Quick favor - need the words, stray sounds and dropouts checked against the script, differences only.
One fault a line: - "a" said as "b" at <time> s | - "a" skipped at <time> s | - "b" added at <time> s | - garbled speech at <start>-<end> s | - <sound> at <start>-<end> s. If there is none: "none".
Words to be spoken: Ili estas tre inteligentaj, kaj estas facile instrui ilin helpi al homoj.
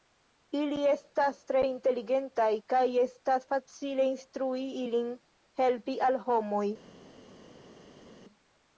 none